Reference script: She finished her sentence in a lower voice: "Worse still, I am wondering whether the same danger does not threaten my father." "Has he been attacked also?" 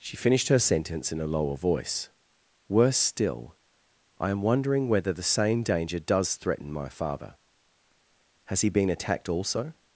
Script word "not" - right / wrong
wrong